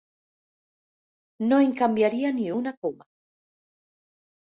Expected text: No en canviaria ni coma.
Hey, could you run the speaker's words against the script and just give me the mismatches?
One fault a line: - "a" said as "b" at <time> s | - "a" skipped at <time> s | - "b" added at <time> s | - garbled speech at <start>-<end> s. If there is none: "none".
- "una" added at 2.6 s